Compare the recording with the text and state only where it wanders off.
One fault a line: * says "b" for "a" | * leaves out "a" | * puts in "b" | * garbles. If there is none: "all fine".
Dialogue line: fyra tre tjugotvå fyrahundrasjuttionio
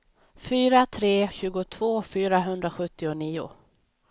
all fine